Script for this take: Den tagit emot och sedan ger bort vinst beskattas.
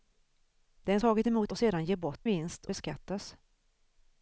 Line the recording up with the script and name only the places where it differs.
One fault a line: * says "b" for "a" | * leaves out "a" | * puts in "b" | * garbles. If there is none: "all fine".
all fine